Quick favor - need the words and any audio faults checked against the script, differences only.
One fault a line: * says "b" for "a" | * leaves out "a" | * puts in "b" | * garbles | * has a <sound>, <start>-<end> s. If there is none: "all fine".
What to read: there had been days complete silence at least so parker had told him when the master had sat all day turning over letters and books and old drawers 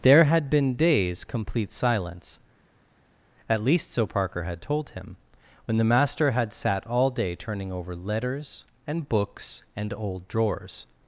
all fine